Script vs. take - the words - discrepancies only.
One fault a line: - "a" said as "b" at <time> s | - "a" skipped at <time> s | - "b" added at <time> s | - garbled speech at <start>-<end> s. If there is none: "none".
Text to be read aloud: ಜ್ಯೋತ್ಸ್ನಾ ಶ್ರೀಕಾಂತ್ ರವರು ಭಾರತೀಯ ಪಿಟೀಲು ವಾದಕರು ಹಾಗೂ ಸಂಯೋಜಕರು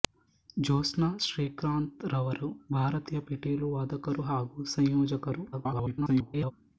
- garbled speech at 5.5-6.5 s